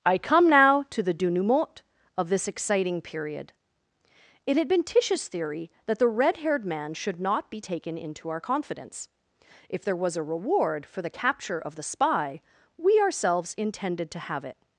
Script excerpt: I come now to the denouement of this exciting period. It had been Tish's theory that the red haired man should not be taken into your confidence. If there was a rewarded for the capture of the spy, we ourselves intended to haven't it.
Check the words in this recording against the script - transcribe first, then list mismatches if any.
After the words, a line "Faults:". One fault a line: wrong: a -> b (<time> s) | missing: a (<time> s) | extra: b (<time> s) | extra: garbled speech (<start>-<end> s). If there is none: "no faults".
I come now to the denouement of this exciting period. It had been Tish's theory that the red haired man should not be taken into our confidence. If there was a reward for the capture of the spy, we ourselves intended to have it.
Faults:
wrong: your -> our (8.3 s)
wrong: rewarded -> reward (10.2 s)
wrong: haven't -> have (14.2 s)